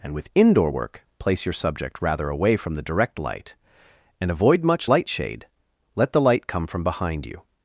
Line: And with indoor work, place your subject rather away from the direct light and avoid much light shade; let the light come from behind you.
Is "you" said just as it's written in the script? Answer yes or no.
yes